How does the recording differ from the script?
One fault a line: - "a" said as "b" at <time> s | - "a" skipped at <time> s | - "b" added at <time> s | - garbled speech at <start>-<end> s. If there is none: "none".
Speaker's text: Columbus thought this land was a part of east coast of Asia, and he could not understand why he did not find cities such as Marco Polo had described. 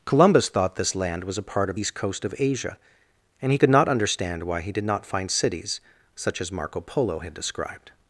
none